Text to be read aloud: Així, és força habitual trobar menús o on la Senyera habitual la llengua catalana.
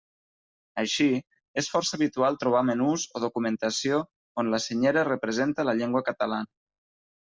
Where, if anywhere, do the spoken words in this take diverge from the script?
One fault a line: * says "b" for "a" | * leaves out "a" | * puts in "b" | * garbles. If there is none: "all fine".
* puts in "documentació"
* says "representa" for "habitual"